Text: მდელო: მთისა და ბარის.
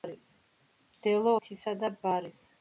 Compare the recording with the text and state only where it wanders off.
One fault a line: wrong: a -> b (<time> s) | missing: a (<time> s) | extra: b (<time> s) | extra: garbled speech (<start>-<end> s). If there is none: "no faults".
no faults